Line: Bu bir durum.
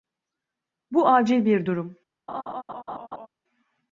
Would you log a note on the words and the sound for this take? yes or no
yes